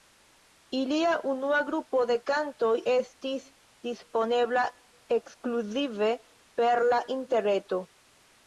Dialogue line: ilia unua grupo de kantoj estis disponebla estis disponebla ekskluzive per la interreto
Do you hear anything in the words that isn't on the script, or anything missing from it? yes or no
yes